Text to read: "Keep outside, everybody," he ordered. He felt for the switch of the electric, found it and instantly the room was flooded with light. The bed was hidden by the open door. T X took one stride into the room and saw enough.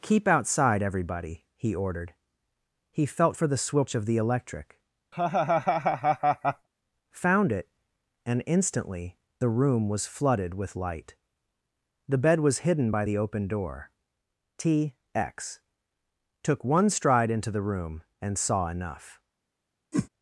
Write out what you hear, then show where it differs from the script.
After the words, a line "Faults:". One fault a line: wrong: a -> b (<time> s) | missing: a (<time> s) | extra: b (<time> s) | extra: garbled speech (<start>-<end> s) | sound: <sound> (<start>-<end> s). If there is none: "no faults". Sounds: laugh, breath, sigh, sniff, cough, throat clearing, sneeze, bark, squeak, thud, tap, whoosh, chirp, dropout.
"Keep outside, everybody," he ordered. He felt for the switch of the electric, found it and instantly the room was flooded with light. The bed was hidden by the open door. T X took one stride into the room and saw enough.
Faults:
sound: laugh (5.1-6.7 s)
sound: whoosh (19.9-20.1 s)